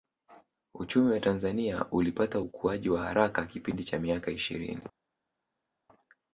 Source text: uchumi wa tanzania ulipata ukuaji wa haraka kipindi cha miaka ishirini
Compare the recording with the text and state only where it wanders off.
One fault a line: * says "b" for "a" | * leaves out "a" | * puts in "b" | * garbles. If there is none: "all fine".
all fine